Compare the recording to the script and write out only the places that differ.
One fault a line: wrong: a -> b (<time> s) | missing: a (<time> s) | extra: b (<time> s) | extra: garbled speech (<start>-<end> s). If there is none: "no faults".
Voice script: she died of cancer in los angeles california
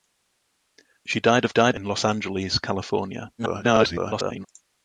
wrong: cancer -> died (1.5 s)
extra: garbled speech (3.4-4.5 s)